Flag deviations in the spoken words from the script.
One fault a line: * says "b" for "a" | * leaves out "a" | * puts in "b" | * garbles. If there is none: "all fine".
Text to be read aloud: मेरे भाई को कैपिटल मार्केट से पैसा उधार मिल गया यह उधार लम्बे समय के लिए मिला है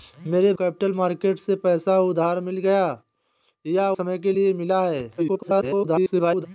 * leaves out "भाई को"
* leaves out "उधार लम्बे"
* garbles